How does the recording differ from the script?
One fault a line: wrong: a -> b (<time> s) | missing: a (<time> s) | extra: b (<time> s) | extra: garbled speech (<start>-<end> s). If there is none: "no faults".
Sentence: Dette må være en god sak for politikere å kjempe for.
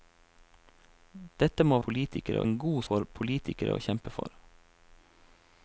wrong: være -> politikere (1.9 s)
missing: sak (2.8 s)